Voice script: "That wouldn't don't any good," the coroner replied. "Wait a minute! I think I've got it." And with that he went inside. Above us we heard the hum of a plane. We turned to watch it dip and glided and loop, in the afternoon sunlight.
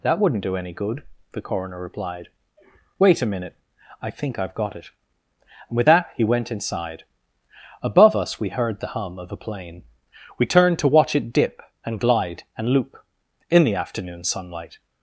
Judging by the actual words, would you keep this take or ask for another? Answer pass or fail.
fail